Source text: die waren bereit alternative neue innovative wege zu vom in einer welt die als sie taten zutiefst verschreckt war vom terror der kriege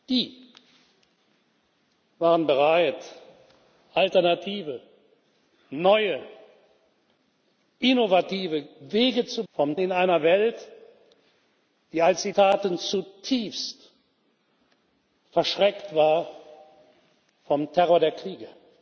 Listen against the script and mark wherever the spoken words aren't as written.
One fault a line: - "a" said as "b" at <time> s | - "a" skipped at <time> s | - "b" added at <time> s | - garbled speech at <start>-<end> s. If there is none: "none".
none